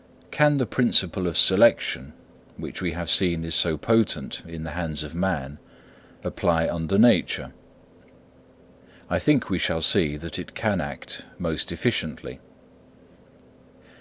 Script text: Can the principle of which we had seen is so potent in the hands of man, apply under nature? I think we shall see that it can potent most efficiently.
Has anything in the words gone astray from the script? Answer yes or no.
yes